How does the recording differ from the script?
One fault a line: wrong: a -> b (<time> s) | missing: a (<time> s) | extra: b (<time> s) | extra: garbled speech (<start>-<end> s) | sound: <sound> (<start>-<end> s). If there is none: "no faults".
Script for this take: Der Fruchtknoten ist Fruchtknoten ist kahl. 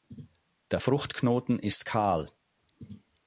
missing: Fruchtknoten ist (1.9 s)